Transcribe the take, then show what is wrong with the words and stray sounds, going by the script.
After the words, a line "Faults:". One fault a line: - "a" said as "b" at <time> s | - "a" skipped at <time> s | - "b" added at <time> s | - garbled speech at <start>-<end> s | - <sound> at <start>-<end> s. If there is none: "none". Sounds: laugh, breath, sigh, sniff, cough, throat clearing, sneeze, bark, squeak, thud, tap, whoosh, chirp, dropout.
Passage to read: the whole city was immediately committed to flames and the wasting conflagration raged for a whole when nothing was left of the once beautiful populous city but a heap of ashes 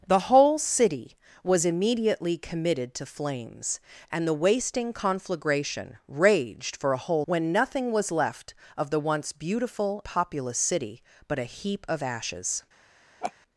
the whole city was immediately committed to flames and the wasting conflagration raged for a whole when nothing was left of the once beautiful populous city but a heap of ashes
Faults:
- laugh at 13.2-13.3 s